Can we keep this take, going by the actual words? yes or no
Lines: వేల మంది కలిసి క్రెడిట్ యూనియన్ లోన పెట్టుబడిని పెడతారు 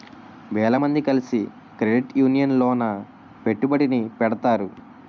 yes